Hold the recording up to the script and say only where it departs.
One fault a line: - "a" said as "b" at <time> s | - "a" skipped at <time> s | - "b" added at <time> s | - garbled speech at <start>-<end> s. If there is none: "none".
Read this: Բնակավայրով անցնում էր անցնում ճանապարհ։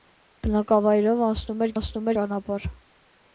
none